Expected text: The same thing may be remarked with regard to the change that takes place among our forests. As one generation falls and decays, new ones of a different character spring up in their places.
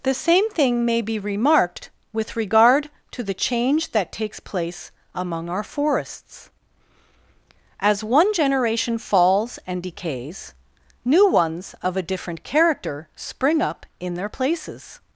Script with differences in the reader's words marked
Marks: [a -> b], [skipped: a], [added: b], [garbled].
The same thing may be remarked with regard to the change that takes place among our forests. As one generation falls and decays, new ones of a different character spring up in their places.